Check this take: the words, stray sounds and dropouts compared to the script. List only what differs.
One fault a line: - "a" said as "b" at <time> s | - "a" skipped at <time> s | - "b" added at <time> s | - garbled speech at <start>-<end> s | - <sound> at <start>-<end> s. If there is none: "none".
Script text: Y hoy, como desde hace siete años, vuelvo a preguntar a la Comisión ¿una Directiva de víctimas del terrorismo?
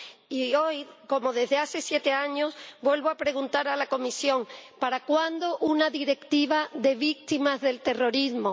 - "para cuándo" added at 4.8 s